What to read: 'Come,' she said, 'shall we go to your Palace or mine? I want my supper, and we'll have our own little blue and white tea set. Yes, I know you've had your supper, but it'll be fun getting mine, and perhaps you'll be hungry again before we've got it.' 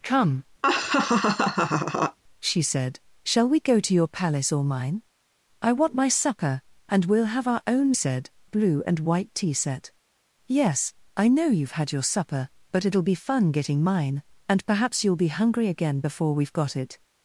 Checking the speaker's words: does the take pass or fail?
fail